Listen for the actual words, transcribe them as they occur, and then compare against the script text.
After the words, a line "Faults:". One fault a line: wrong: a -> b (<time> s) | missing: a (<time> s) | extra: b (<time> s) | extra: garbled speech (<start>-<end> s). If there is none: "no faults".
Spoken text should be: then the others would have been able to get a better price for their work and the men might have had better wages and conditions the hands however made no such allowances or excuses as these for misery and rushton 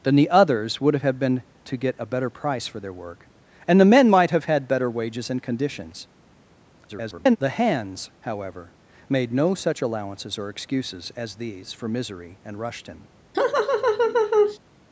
then the others would have been to get a better price for their work and the men might have had better wages and conditions [garbled] the hands however made no such allowances or excuses as these for misery and rushton
Faults:
missing: able (1.4 s)
extra: garbled speech (6.9-7.4 s)